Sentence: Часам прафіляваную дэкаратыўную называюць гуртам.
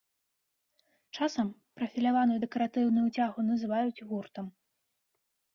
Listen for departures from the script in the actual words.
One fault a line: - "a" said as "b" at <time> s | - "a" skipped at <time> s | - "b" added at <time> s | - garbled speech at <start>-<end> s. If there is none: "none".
- "цягу" added at 3.1 s